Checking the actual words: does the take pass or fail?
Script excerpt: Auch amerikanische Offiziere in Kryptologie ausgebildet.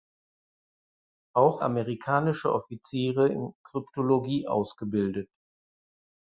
pass